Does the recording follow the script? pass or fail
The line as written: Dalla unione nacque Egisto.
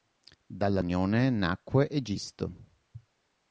pass